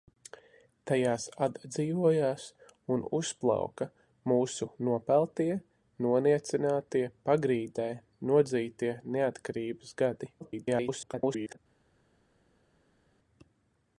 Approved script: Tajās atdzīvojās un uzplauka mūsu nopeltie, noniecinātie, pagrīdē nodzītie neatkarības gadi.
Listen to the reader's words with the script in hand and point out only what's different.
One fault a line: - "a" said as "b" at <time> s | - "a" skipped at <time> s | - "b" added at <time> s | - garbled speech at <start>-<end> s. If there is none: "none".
- garbled speech at 10.4-11.6 s